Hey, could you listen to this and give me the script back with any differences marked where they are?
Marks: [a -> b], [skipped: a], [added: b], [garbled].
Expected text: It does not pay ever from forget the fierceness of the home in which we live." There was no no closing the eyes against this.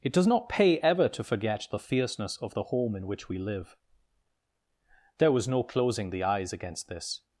It does not pay ever [from -> to] forget the fierceness of the home in which we live." There was no [skipped: no] closing the eyes against this.